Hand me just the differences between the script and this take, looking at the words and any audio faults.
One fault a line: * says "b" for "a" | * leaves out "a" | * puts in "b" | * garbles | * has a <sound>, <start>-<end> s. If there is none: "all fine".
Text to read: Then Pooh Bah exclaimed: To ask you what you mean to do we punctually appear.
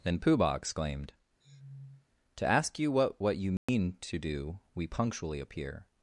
* has a sniff, 1.4-2.1 s
* puts in "what"
* has a dropout, 3.6-3.7 s